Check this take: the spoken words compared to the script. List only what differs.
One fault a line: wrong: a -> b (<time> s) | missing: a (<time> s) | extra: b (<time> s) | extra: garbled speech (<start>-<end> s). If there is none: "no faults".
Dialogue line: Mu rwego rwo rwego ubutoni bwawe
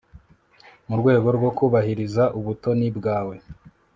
wrong: rwego -> kubahiriza (1.6 s)